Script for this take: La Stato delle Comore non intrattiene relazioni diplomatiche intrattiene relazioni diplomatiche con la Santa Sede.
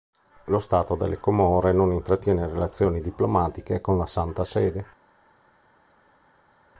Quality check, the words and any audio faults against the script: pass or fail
fail